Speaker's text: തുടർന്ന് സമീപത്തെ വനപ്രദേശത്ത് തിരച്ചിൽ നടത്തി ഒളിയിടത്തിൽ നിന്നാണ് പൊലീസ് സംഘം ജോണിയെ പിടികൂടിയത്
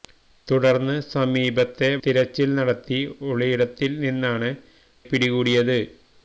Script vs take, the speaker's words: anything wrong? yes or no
yes